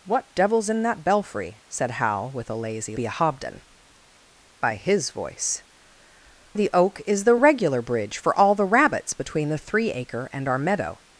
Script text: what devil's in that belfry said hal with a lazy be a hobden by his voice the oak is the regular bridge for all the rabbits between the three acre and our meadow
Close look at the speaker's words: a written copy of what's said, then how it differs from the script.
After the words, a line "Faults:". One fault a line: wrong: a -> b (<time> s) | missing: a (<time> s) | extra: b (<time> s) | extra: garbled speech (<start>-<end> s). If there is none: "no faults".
what devil's in that belfry said hal with a lazy be a hobden by his voice the oak is the regular bridge for all the rabbits between the three acre and our meadow
Faults:
no faults